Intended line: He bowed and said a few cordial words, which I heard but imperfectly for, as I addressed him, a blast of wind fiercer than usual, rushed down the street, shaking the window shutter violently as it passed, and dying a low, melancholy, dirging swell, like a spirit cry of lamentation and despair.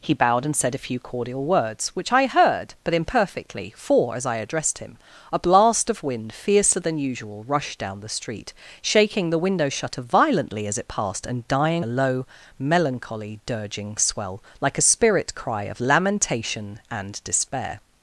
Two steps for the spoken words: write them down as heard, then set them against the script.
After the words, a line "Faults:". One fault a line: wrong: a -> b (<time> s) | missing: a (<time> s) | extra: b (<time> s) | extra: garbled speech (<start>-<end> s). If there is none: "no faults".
He bowed and said a few cordial words, which I heard but imperfectly for, as I addressed him, a blast of wind fiercer than usual, rushed down the street, shaking the window shutter violently as it passed, and dying a low, melancholy, dirging swell, like a spirit cry of lamentation and despair.
Faults:
no faults